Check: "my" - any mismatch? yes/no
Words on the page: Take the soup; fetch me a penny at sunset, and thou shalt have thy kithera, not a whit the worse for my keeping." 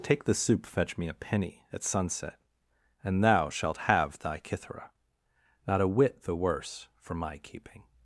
no